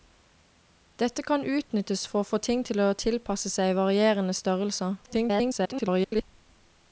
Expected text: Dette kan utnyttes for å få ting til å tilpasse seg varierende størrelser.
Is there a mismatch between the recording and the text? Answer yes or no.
yes